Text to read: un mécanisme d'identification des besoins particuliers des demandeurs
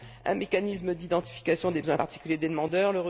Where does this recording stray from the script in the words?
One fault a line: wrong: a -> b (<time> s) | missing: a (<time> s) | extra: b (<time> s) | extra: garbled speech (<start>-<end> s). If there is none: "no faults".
no faults